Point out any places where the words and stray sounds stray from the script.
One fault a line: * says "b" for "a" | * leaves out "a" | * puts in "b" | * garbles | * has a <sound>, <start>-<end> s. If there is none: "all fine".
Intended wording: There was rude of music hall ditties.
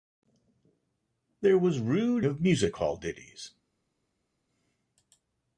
all fine